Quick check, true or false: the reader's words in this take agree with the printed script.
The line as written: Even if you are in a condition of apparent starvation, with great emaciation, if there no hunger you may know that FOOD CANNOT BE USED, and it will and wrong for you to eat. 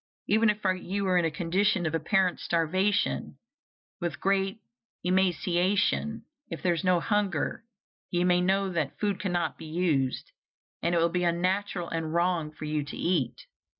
false